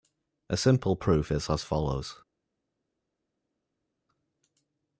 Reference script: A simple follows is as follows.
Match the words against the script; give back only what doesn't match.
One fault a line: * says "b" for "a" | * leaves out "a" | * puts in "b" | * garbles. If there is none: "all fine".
* says "proof" for "follows"